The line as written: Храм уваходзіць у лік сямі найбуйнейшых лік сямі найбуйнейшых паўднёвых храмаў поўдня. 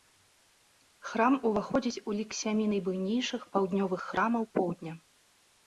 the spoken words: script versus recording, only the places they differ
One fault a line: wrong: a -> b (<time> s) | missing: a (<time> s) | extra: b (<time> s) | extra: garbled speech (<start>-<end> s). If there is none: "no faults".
missing: лік сямі найбуйнейшых (3.5 s)